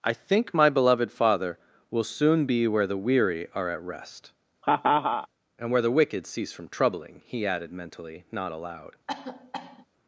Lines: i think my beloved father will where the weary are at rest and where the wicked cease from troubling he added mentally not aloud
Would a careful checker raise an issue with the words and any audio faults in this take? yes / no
yes